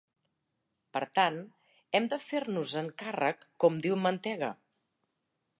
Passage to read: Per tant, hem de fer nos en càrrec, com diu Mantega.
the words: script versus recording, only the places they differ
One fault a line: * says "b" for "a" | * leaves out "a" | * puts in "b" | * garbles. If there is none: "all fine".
all fine